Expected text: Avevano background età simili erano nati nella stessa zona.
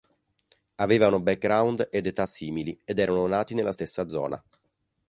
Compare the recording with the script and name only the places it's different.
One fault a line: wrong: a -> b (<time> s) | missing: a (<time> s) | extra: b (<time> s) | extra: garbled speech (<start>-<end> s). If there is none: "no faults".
extra: ed (1.9 s)
extra: ed (2.8 s)